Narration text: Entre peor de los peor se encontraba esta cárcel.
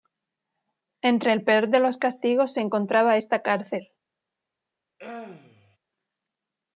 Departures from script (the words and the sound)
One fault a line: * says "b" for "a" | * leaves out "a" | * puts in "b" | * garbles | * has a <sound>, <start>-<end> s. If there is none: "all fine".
* puts in "el"
* says "castigos" for "peor"
* has a throat clearing, 5.0-5.8 s